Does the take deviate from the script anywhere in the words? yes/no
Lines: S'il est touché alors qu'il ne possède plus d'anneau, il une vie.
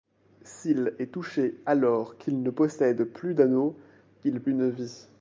no